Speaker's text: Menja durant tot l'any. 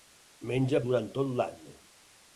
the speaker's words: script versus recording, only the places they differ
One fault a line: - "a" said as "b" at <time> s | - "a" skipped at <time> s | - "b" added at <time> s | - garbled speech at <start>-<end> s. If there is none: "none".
none